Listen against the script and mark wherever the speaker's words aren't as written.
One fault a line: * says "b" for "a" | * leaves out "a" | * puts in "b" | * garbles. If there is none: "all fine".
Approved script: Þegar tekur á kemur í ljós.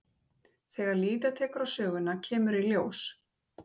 * puts in "líða"
* puts in "söguna"